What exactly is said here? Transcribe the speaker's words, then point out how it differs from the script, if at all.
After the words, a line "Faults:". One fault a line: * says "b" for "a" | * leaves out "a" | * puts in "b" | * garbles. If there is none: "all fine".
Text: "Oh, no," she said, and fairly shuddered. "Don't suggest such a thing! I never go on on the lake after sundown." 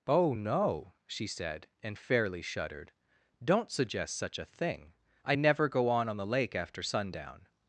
"Oh, no," she said, and fairly shuddered. "Don't suggest such a thing! I never go on on the lake after sundown."
Faults:
all fine